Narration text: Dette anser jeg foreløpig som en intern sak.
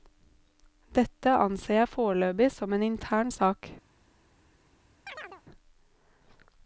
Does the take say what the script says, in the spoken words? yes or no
yes